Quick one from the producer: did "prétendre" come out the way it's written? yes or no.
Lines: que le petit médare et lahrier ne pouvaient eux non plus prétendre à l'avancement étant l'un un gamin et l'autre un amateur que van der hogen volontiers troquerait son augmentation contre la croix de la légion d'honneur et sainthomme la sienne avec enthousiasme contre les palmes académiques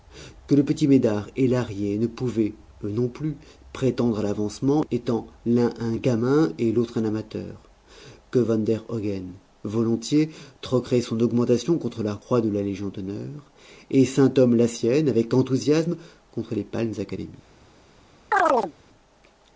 yes